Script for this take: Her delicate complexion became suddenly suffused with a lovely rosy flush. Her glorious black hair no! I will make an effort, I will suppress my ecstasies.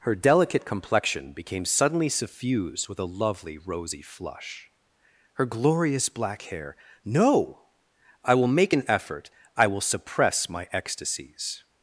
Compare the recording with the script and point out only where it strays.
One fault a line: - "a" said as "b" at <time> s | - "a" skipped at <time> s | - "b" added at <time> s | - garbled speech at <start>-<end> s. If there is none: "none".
none